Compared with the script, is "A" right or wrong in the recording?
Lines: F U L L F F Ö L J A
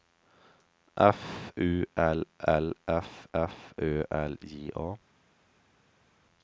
right